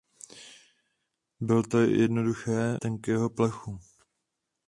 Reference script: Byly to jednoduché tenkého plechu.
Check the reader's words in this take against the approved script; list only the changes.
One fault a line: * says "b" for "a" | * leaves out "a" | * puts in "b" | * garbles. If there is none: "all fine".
all fine